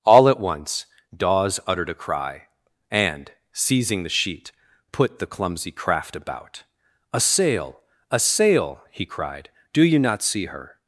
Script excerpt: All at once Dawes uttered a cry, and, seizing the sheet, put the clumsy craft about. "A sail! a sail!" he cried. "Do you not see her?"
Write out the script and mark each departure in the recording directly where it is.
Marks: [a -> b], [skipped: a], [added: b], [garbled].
All at once Dawes uttered a cry, and, seizing the sheet, put the clumsy craft about. "A sail! a sail!" he cried. "Do you not see her?"